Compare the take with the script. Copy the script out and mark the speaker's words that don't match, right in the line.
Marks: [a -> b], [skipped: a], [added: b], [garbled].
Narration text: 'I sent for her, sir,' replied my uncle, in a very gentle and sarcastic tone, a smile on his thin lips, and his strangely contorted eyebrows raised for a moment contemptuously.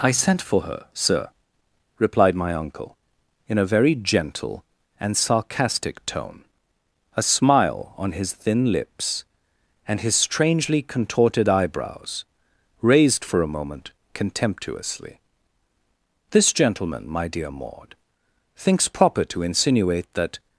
'I sent for her, sir,' replied my uncle, in a very gentle and sarcastic tone, a smile on his thin lips, and his strangely contorted eyebrows raised for a moment contemptuously. [added: This gentleman my dear Maud thinks proper to insinuate that]